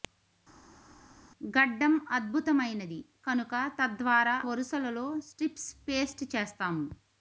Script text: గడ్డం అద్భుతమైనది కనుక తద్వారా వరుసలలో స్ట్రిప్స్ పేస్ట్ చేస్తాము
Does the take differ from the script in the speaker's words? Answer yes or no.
no